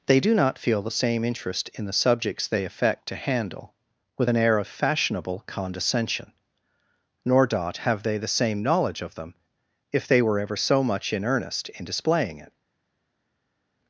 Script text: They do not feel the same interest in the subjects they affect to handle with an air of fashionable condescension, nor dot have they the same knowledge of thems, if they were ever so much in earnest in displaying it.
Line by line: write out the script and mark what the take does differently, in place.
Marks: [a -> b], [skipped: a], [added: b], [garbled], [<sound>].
They do not feel the same interest in the subjects they affect to handle with an air of fashionable condescension, nor dot have they the same knowledge of [thems, -> them] if they were ever so much in earnest in displaying it.